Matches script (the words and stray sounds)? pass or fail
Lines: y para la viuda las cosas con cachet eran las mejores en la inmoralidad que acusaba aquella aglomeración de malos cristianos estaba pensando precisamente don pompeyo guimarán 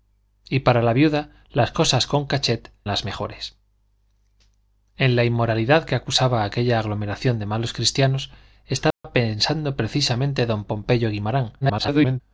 fail